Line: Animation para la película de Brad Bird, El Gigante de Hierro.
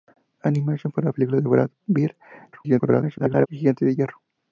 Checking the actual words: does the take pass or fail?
fail